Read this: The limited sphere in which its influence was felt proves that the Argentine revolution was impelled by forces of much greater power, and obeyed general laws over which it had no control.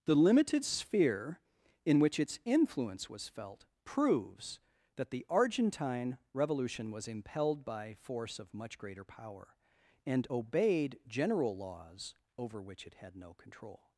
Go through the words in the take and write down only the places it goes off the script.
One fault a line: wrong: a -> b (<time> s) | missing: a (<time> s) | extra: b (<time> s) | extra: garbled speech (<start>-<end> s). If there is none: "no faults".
wrong: forces -> force (7.9 s)